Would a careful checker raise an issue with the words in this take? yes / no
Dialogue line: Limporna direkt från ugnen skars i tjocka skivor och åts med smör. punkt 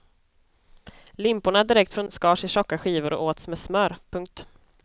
yes